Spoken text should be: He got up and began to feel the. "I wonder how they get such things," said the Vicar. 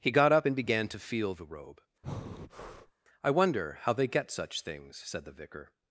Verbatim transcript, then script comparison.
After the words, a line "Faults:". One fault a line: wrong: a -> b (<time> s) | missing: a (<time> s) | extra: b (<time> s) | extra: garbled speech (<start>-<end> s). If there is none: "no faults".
He got up and began to feel the robe. "I wonder how they get such things," said the Vicar.
Faults:
extra: robe (1.4 s)